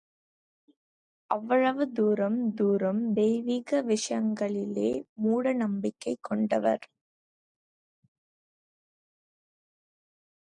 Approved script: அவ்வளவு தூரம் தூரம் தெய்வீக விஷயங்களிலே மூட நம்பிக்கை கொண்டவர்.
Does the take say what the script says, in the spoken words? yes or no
yes